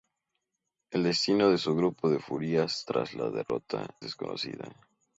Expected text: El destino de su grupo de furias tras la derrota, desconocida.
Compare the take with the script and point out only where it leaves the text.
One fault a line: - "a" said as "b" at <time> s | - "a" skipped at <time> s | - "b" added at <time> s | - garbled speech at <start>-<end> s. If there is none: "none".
none